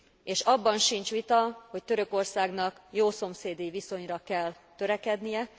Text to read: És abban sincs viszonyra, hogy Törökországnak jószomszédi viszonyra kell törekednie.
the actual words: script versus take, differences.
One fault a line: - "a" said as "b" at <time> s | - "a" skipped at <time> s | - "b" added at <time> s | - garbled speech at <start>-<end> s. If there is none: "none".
- "viszonyra" said as "vita" at 1.1 s